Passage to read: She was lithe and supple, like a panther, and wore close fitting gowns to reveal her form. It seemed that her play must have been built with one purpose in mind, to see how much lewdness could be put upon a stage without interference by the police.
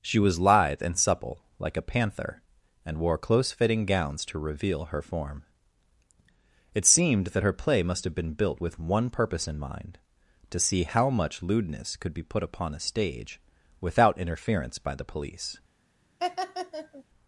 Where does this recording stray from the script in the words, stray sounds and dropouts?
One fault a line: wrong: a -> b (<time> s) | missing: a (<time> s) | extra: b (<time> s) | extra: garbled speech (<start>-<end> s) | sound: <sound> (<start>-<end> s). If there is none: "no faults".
sound: laugh (16.2-17.0 s)